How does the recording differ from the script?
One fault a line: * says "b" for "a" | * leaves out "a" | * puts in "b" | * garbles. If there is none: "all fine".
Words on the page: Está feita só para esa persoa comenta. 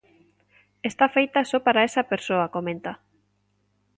all fine